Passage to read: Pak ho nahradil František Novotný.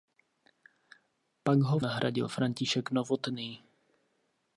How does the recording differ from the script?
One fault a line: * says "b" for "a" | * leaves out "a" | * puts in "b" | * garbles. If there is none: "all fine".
all fine